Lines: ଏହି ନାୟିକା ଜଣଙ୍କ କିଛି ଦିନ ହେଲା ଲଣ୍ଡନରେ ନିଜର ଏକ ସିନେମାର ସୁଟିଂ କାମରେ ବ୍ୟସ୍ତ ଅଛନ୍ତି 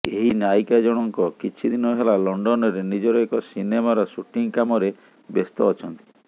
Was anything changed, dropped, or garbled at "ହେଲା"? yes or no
no